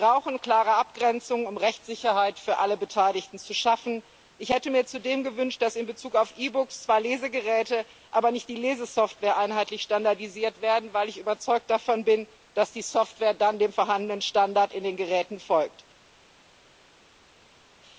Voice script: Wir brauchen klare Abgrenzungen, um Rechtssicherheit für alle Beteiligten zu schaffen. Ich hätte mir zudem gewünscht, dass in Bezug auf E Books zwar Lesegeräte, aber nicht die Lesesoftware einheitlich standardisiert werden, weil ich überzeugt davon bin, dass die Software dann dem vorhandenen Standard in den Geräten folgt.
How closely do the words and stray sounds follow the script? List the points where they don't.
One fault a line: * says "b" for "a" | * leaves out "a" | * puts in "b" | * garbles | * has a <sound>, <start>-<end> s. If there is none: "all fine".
all fine